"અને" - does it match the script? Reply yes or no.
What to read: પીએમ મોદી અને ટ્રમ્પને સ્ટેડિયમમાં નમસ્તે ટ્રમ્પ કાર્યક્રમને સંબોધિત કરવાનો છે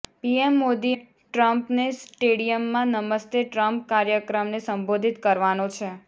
no